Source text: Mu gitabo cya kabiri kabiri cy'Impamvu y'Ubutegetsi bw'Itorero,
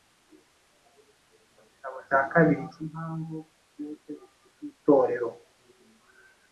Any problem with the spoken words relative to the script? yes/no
yes